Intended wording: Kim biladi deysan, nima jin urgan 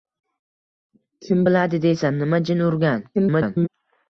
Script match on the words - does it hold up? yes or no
no